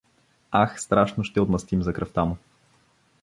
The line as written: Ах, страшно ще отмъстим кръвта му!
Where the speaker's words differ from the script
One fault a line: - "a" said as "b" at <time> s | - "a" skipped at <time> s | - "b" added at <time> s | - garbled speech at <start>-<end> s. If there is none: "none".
- "за" added at 1.8 s